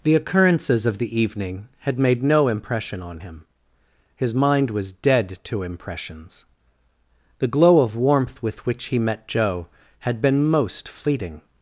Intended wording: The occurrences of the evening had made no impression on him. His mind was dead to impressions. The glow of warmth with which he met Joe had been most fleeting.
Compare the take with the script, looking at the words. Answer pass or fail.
pass